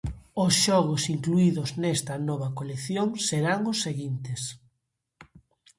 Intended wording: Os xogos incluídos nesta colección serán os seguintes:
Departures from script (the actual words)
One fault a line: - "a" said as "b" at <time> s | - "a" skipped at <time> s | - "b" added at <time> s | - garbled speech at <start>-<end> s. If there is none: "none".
- "nova" added at 2.3 s